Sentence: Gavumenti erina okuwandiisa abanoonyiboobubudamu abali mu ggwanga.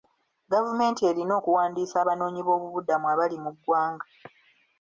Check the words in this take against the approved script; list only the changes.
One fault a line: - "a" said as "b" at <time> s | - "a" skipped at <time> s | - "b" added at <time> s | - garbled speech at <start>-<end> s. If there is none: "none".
none